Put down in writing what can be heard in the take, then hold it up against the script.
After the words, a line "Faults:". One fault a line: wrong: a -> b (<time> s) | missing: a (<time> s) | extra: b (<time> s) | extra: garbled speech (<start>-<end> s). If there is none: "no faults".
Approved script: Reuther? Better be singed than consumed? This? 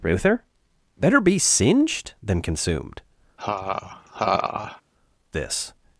Reuther? Better be singed than consumed? This?
Faults:
no faults